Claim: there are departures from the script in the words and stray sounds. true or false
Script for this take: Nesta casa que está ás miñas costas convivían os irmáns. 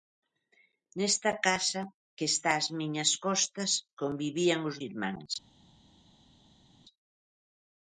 false